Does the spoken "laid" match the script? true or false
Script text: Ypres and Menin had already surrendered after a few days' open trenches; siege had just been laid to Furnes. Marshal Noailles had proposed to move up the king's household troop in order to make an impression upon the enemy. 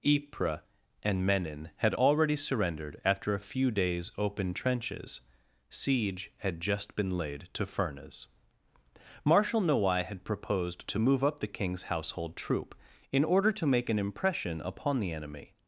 true